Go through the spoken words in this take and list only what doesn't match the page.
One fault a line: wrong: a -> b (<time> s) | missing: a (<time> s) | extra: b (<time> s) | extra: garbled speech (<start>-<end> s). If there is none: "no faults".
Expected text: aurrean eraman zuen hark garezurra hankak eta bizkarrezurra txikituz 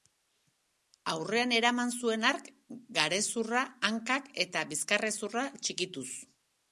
no faults